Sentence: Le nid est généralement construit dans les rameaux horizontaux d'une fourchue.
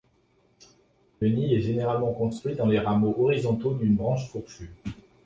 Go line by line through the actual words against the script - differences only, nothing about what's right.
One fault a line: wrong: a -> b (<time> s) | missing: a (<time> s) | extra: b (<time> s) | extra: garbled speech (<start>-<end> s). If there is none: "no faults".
extra: branche (4.0 s)